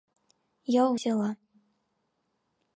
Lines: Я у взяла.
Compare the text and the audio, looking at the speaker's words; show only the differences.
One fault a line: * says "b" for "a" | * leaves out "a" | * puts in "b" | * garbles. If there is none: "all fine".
all fine